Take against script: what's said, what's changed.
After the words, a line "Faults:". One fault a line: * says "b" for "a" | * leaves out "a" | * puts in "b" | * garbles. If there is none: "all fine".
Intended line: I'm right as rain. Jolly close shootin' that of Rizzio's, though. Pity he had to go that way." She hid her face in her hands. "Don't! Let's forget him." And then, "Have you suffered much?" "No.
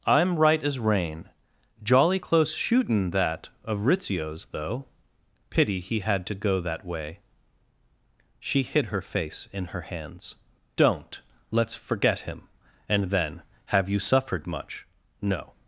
I'm right as rain. Jolly close shootin' that of Rizzio's, though. Pity he had to go that way." She hid her face in her hands. "Don't! Let's forget him." And then, "Have you suffered much?" "No.
Faults:
all fine